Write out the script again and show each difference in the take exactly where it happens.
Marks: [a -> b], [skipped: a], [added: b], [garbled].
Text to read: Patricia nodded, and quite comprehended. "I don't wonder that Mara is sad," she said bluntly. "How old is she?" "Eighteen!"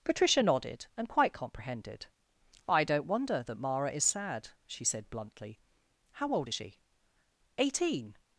Patricia nodded, and quite comprehended. "I don't wonder that Mara is sad," she said bluntly. "How old is she?" "Eighteen!"